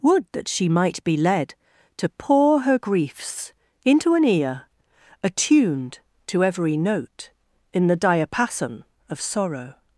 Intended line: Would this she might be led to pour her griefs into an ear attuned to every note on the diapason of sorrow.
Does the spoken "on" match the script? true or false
false